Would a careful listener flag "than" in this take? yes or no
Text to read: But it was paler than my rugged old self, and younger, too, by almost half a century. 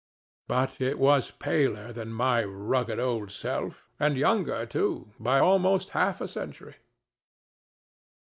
no